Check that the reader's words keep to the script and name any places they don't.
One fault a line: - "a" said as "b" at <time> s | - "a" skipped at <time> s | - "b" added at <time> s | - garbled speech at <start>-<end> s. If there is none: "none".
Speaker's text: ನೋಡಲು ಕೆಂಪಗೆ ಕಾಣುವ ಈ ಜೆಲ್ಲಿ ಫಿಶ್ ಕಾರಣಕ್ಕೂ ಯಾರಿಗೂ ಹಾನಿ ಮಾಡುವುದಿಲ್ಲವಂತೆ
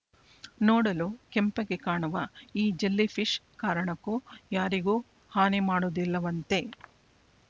none